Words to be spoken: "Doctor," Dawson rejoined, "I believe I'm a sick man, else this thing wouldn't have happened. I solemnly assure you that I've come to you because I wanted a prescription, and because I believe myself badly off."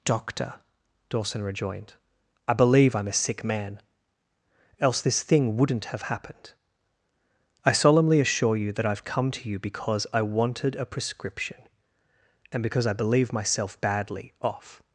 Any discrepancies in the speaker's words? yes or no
no